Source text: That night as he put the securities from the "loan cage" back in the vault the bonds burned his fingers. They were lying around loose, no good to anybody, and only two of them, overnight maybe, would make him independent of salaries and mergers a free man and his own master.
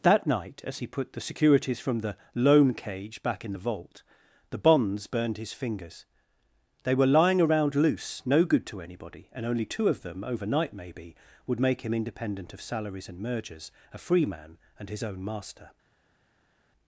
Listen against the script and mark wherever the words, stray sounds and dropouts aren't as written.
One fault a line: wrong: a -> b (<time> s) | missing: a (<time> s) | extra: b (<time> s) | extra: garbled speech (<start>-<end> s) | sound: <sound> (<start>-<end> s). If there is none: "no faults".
no faults